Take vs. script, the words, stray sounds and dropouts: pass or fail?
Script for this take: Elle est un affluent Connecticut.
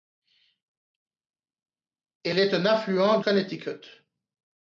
pass